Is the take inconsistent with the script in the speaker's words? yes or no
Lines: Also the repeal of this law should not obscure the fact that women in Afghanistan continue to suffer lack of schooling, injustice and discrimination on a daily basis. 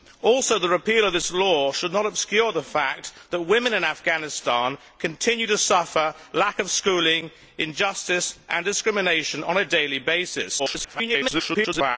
yes